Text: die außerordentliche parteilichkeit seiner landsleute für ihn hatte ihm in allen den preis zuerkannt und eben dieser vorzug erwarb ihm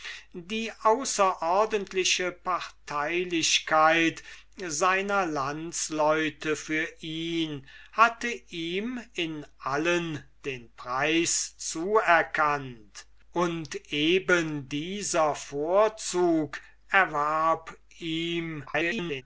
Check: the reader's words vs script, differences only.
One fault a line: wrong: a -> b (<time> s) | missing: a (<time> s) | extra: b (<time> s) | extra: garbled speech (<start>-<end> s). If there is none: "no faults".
extra: garbled speech (18.7-19.2 s)